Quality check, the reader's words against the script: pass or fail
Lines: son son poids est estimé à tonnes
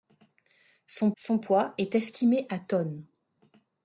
pass